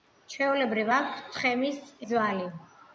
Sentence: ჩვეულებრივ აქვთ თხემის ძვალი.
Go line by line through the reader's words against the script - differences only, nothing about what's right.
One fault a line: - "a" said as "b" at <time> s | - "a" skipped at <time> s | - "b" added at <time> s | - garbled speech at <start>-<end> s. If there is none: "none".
none